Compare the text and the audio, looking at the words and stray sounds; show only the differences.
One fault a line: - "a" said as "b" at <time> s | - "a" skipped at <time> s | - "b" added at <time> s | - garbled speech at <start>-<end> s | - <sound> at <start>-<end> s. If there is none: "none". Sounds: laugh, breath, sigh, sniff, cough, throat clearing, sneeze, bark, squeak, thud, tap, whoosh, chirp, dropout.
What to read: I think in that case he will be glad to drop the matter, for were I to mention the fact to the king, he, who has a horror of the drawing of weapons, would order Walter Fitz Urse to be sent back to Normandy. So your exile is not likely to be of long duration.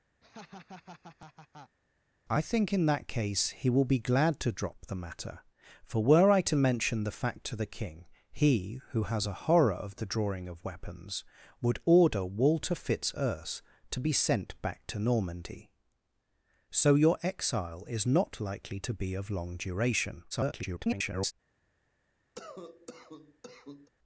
- laugh at 0.2-1.8 s
- garbled speech at 20.3-21.3 s
- cough at 22.4-23.9 s